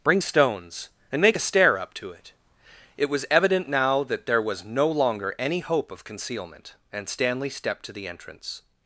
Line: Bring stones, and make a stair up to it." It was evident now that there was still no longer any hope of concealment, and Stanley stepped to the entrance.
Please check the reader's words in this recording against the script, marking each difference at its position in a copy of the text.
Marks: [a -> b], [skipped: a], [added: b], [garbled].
Bring stones, and make a stair up to it." It was evident now that there was [skipped: still] no longer any hope of concealment, and Stanley stepped to the entrance.